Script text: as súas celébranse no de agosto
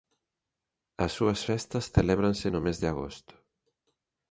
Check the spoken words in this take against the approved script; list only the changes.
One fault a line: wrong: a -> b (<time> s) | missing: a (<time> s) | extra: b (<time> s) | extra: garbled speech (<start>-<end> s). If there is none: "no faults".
extra: festas (1.5 s)
extra: mes (2.6 s)